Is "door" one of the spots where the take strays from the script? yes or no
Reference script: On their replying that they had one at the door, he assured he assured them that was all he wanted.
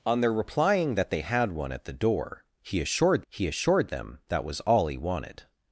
no